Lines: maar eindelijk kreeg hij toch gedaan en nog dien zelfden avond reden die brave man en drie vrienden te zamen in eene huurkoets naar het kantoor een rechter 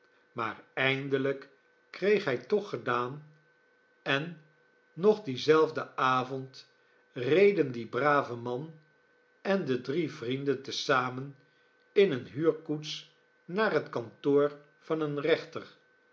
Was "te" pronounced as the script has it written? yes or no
yes